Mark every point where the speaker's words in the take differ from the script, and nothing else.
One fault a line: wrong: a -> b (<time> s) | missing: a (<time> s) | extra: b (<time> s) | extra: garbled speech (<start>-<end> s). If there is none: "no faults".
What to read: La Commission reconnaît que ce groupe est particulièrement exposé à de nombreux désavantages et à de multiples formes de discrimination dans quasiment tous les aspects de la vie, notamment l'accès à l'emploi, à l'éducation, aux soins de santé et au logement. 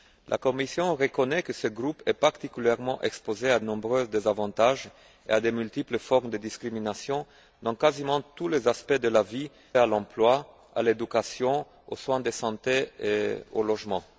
missing: de (3.6 s)
missing: notamment l'accès (9.5 s)